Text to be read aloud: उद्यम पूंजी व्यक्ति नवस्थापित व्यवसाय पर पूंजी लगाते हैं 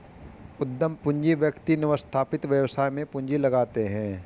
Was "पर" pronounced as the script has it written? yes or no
no